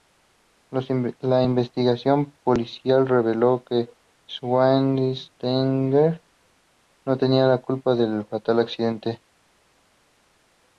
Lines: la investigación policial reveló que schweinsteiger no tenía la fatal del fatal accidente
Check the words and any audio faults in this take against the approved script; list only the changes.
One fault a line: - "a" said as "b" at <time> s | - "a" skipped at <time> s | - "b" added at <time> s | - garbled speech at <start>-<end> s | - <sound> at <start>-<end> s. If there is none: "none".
- "fatal" said as "culpa" at 7.6 s